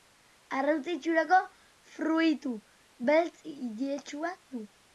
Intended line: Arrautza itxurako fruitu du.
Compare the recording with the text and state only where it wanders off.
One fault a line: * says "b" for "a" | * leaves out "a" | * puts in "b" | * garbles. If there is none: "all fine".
* puts in "beltz iletsua"